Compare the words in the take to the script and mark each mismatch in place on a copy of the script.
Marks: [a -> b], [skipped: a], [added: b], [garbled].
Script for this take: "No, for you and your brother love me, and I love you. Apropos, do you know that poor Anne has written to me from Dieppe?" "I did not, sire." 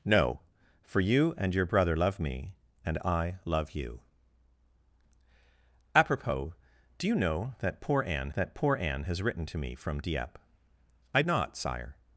"No, for you and your brother love me, and I love you. Apropos, do you know that poor Anne [added: that poor Anne] has written to me from Dieppe?" "I [skipped: did] not, sire."